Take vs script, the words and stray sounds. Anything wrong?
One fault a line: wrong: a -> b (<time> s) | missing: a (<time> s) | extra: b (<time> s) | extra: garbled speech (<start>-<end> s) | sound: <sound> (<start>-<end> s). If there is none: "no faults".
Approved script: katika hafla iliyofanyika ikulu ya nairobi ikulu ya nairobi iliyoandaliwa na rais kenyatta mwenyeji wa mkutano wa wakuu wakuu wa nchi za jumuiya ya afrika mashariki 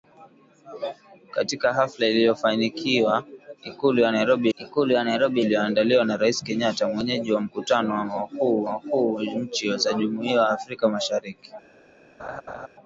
sound: laugh (12.2-12.7 s)